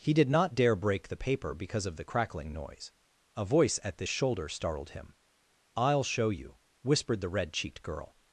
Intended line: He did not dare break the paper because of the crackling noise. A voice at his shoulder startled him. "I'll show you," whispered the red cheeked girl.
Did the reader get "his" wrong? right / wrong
wrong